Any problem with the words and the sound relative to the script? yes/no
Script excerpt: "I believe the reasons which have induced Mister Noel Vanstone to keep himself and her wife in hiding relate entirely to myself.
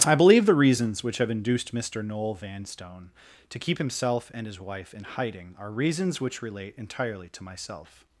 yes